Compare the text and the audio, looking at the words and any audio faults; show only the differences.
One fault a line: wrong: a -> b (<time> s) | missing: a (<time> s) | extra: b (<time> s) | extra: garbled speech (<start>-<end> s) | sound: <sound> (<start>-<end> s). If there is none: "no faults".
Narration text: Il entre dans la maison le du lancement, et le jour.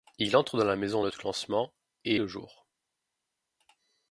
no faults